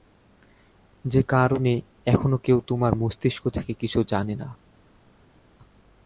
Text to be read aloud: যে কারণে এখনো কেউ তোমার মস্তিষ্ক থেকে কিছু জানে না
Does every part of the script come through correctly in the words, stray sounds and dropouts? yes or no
yes